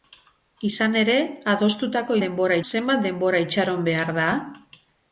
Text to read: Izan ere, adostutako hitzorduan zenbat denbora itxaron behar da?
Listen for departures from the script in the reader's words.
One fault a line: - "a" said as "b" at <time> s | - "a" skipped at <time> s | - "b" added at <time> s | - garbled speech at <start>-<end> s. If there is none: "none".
- "hitzorduan" said as "denbora" at 2.2 s